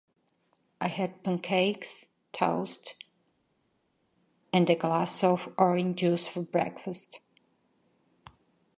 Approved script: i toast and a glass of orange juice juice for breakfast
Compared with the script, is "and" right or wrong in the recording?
right